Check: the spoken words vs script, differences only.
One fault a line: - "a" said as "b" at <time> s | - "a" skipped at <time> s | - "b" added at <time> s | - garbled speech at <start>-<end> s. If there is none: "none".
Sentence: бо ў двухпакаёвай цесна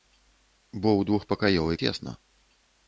none